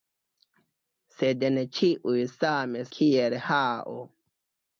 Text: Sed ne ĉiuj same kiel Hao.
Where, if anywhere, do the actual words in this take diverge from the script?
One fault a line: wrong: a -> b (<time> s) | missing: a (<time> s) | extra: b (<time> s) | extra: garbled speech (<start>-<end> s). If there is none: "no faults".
no faults